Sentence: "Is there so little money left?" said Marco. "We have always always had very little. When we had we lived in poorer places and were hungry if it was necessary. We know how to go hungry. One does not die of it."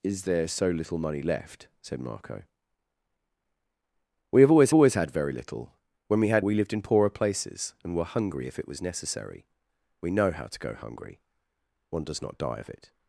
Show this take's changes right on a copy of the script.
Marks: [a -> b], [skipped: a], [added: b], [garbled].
"Is there so little money left?" said Marco. "We have always always had very little. When we had we lived in poorer places and were hungry if it was necessary. We know how to go hungry. One does not die of it."